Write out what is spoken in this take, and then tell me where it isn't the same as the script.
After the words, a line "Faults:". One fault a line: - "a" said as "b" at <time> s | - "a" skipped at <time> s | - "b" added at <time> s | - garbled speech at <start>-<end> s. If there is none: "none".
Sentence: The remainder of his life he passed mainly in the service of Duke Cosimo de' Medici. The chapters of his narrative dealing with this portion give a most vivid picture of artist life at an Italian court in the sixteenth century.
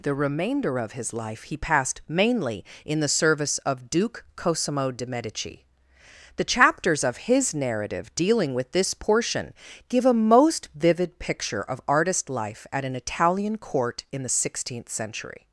The remainder of his life he passed mainly in the service of Duke Cosimo de' Medici. The chapters of his narrative dealing with this portion give a most vivid picture of artist life at an Italian court in the sixteenth century.
Faults:
none